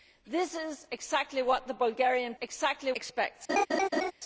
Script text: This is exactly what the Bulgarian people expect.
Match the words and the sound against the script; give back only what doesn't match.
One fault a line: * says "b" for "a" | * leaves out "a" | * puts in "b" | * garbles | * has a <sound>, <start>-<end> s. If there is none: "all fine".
* says "exactly" for "people"
* has a laugh, 3.5-4.1 s